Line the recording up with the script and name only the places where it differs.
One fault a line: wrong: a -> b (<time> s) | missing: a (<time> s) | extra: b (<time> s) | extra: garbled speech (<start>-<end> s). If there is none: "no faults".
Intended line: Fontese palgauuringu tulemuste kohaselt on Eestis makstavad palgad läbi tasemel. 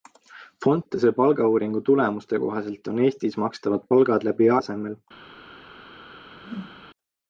no faults